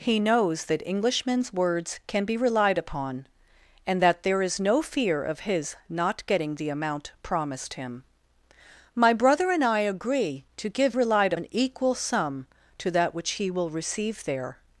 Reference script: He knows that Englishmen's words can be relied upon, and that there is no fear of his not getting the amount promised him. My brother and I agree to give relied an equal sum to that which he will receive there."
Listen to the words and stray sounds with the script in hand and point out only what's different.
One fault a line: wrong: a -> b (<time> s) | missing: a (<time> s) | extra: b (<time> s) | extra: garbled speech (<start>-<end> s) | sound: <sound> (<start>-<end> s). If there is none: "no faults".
no faults